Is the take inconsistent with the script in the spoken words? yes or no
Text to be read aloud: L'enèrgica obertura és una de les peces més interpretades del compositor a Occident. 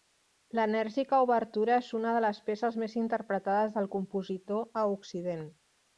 no